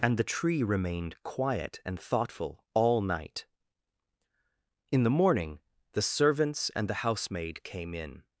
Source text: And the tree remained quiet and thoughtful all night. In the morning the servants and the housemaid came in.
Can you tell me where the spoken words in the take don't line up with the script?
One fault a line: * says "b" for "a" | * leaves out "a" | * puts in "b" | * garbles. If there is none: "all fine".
all fine